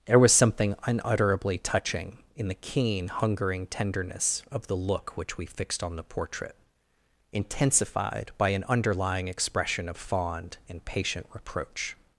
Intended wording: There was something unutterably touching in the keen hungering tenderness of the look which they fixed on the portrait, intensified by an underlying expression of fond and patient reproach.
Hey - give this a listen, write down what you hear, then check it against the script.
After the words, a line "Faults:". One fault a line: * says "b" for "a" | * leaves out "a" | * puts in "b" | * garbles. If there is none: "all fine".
There was something unutterably touching in the keen hungering tenderness of the look which we fixed on the portrait, intensified by an underlying expression of fond and patient reproach.
Faults:
* says "we" for "they"